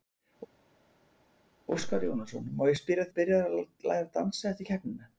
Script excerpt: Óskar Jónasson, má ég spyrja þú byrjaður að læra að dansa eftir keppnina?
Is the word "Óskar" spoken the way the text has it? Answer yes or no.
yes